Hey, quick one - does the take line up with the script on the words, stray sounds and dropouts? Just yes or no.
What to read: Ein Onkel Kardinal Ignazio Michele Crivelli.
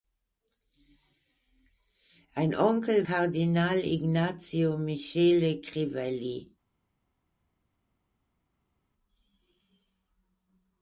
yes